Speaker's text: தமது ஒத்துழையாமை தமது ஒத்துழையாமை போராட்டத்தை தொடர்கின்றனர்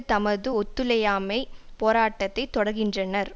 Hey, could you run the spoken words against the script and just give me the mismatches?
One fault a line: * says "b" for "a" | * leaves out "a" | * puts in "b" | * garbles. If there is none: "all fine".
* leaves out "தமது ஒத்துழையாமை"